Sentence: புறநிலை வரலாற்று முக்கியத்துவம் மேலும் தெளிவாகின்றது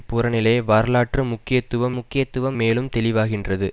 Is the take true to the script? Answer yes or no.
no